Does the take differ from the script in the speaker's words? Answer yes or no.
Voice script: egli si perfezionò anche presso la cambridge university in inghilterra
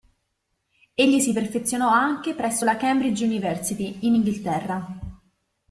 no